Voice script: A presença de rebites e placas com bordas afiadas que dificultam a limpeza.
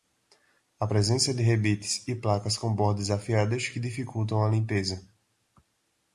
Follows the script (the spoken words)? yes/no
yes